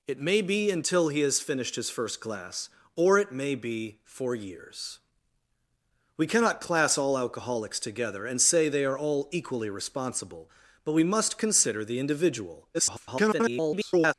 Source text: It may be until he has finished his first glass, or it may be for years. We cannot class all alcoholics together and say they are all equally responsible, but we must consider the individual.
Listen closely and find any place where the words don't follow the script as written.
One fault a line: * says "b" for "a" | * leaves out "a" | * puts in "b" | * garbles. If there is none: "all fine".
* garbles